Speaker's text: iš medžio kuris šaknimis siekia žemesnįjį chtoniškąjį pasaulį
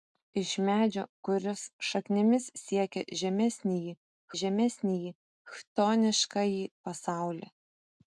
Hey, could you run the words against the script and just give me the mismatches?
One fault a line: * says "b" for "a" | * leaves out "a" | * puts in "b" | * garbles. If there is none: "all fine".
* puts in "žemesnįjį"